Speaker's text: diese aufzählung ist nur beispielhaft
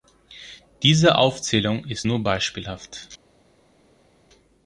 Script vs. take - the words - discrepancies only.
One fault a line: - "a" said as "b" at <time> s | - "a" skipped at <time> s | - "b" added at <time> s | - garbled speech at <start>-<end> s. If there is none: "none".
none